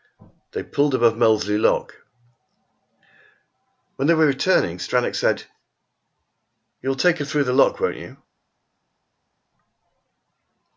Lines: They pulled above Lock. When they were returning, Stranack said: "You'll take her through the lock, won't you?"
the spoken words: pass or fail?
fail